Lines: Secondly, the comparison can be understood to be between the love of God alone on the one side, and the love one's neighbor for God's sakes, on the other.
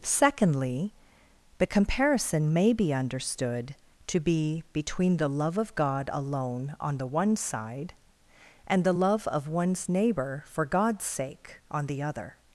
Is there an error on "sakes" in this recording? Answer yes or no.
yes